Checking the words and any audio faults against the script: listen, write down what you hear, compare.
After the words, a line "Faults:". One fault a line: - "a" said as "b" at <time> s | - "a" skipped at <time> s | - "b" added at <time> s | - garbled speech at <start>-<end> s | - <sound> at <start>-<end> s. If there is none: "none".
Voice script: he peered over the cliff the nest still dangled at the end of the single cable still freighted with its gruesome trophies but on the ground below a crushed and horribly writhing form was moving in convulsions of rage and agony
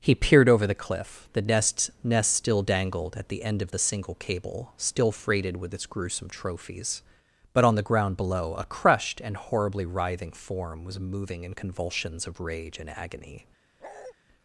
he peered over the cliff the nest nest still dangled at the end of the single cable still freighted with its gruesome trophies but on the ground below a crushed and horribly writhing form was moving in convulsions of rage and agony
Faults:
- "nest" added at 2.0 s
- bark at 13.8-14.1 s